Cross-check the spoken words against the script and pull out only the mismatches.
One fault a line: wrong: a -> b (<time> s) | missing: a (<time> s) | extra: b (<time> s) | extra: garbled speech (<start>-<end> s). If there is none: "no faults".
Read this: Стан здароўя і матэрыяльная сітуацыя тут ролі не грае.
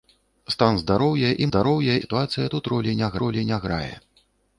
wrong: матэрыяльная -> здароўя (1.5 s)
extra: ролі не (3.3 s)